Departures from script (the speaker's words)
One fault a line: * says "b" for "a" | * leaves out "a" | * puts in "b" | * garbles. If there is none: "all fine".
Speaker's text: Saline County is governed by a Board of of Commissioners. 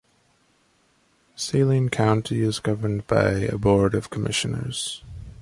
* leaves out "of"